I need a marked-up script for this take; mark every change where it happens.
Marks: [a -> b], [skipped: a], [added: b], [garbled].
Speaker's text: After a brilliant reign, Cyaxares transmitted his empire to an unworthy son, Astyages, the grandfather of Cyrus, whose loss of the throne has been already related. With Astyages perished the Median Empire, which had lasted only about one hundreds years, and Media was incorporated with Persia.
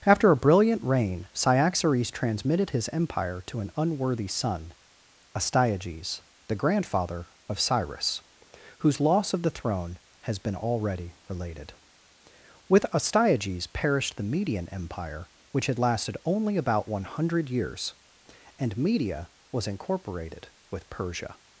After a brilliant reign, Cyaxares transmitted his empire to an unworthy son, Astyages, the grandfather of Cyrus, whose loss of the throne has been already related. With Astyages perished the Median Empire, which had lasted only about one [hundreds -> hundred] years, and Media was incorporated with Persia.